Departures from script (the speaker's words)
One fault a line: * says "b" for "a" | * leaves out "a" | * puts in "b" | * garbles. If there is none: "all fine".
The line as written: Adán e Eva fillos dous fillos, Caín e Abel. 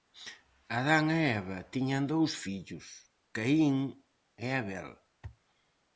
* says "tiñan" for "fillos"